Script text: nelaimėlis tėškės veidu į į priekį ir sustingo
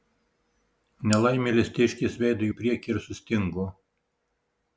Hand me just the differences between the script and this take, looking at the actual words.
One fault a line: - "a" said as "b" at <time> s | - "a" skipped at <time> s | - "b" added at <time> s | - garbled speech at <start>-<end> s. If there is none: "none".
none